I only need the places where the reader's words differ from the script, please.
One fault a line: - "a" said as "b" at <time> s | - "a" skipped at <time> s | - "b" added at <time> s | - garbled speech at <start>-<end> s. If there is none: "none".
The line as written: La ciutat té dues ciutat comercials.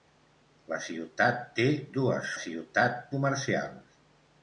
none